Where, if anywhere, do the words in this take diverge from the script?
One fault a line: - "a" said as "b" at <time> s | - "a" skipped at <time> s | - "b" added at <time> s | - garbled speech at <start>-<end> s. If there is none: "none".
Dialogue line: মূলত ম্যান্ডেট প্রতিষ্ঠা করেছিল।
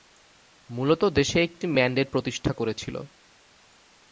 - "দেশে একটি" added at 1.1 s